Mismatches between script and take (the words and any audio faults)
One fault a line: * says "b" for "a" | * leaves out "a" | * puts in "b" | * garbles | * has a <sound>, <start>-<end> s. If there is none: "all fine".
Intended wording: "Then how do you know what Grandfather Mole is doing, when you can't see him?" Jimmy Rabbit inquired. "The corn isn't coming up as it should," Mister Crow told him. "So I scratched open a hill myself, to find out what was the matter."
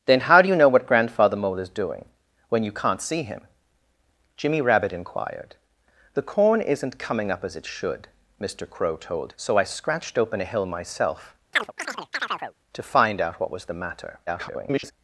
* leaves out "him"
* has a chirp, 11.5-12.5 s
* garbles